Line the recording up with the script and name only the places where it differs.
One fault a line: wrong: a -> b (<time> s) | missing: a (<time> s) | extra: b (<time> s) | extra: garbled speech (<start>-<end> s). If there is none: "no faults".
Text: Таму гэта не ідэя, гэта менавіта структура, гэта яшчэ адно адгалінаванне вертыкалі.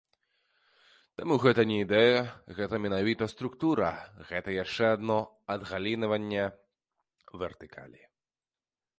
no faults